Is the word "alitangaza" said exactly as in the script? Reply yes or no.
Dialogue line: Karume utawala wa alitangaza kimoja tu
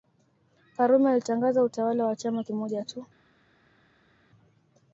no